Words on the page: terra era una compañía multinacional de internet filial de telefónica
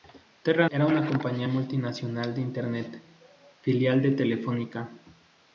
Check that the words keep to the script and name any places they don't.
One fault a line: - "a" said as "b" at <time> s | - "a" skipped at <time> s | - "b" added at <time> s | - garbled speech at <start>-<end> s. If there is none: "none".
none